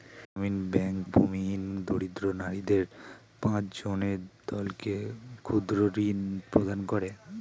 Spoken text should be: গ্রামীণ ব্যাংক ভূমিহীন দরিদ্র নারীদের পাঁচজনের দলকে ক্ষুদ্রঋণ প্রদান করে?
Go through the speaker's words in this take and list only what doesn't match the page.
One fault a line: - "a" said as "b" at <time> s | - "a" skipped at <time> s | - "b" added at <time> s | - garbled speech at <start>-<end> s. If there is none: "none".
none